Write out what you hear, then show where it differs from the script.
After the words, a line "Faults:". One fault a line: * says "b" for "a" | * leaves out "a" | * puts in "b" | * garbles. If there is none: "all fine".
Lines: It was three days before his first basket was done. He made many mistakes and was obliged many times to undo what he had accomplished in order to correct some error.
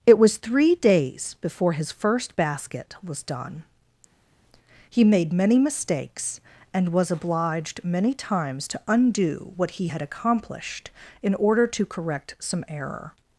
It was three days before his first basket was done. He made many mistakes and was obliged many times to undo what he had accomplished in order to correct some error.
Faults:
all fine